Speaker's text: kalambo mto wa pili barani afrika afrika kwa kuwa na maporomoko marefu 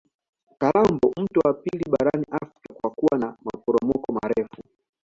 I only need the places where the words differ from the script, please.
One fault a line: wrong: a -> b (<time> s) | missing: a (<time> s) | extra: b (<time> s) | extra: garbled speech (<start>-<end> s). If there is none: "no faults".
missing: afrika (2.7 s)